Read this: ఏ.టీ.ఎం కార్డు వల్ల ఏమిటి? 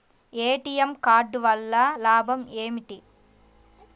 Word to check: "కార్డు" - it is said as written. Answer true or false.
true